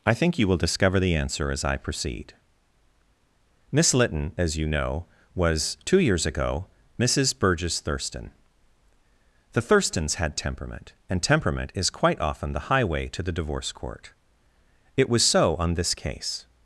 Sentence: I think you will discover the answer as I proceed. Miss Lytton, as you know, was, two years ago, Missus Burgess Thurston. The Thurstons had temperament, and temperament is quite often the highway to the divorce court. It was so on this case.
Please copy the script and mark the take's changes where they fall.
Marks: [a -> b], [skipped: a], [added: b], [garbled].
I think you will discover the answer as I proceed. Miss Lytton, as you know, was, two years ago, Missus Burgess Thurston. The Thurstons had temperament, and temperament is quite often the highway to the divorce court. It was so on this case.